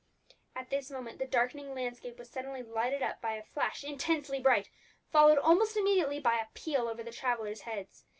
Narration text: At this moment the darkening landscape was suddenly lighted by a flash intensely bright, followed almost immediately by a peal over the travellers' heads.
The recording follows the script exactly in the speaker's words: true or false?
false